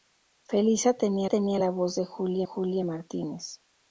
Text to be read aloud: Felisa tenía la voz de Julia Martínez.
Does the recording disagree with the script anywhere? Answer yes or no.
yes